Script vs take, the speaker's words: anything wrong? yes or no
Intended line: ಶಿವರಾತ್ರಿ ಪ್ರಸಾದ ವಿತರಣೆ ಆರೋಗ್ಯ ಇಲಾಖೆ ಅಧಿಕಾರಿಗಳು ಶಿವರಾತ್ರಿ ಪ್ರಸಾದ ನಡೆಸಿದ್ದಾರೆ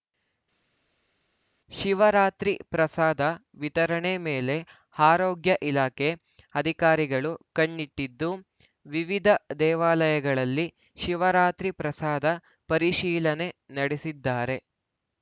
yes